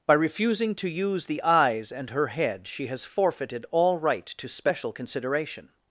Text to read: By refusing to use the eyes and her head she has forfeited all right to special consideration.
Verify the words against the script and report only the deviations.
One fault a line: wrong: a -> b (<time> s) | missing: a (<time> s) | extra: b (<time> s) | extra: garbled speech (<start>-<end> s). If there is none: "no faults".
no faults